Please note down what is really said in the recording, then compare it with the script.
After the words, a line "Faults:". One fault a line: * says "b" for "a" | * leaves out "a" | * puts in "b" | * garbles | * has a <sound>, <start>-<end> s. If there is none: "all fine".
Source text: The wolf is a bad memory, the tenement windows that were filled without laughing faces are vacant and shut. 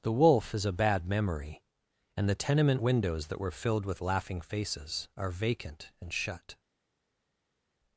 The wolf is a bad memory, and the tenement windows that were filled with laughing faces are vacant and shut.
Faults:
* puts in "and"
* says "with" for "without"